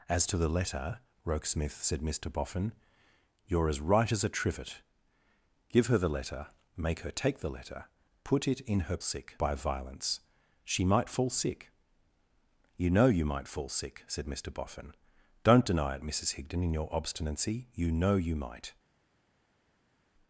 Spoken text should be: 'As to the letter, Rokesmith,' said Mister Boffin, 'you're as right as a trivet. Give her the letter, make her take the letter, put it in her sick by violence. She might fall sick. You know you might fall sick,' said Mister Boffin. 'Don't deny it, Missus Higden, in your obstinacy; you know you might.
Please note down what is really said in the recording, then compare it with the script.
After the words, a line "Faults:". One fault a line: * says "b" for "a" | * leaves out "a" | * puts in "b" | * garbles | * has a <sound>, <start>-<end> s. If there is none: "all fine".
'As to the letter, Rokesmith,' said Mister Boffin, 'you're as right as a trivet. Give her the letter, make her take the letter, put it in her sick by violence. She might fall sick. You know you might fall sick,' said Mister Boffin. 'Don't deny it, Missus Higden, in your obstinacy; you know you might.
Faults:
all fine